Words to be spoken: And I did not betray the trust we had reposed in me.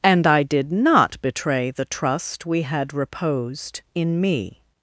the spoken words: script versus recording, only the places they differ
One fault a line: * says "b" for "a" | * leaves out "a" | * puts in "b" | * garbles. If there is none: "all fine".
all fine